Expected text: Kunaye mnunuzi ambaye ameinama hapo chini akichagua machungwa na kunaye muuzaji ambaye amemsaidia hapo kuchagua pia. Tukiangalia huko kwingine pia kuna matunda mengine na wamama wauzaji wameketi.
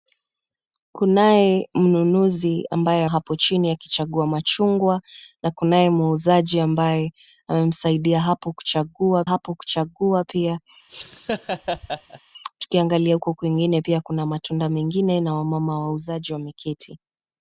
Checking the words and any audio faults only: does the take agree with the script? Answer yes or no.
no